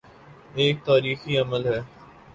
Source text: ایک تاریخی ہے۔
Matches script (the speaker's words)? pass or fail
fail